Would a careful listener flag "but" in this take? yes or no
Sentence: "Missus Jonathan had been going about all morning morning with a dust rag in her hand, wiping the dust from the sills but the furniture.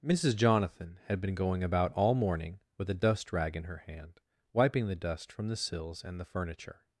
yes